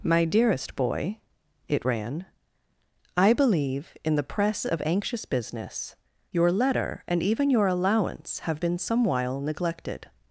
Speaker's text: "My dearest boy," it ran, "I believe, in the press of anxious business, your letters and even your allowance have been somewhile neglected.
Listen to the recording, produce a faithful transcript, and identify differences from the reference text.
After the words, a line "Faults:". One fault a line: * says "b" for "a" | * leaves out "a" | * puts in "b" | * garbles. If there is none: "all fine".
"My dearest boy," it ran, "I believe, in the press of anxious business, your letter and even your allowance have been somewhile neglected.
Faults:
* says "letter" for "letters"